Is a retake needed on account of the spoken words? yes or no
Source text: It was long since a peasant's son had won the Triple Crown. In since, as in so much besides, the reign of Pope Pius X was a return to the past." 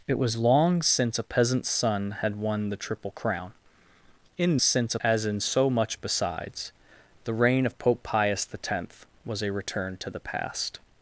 no